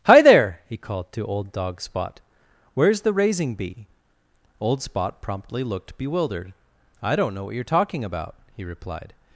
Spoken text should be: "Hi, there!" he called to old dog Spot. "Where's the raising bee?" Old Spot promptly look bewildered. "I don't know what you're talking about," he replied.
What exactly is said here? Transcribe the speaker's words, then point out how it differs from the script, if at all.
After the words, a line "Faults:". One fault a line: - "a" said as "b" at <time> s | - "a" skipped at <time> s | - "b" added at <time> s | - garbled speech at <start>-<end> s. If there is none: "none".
"Hi, there!" he called to old dog Spot. "Where's the raising bee?" Old Spot promptly looked bewildered. "I don't know what you're talking about," he replied.
Faults:
- "look" said as "looked" at 5.6 s